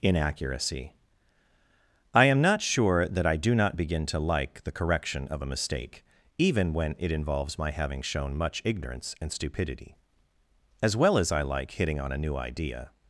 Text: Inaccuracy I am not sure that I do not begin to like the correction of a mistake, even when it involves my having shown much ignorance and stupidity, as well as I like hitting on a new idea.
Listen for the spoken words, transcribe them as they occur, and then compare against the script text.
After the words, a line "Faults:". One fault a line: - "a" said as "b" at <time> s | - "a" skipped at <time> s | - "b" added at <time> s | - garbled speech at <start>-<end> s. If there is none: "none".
Inaccuracy I am not sure that I do not begin to like the correction of a mistake, even when it involves my having shown much ignorance and stupidity, as well as I like hitting on a new idea.
Faults:
none